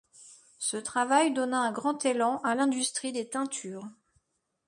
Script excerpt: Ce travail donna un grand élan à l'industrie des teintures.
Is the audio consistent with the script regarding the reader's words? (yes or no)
yes